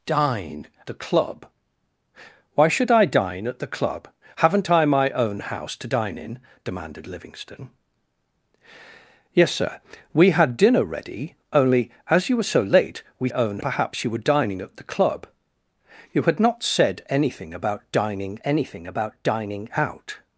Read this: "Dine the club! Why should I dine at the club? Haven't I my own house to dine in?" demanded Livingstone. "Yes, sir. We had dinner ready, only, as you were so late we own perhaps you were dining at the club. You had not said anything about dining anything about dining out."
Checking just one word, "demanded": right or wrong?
right